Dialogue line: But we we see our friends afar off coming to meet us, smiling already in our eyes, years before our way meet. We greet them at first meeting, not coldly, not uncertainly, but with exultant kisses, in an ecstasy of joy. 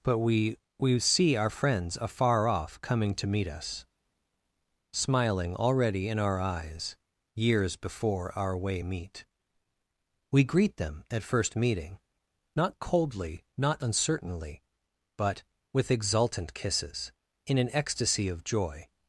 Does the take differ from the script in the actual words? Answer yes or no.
no